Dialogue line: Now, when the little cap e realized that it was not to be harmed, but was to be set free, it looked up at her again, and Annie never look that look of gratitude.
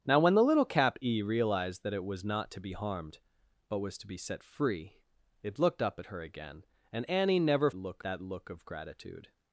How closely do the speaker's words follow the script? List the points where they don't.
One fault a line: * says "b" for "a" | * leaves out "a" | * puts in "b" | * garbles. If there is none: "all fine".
all fine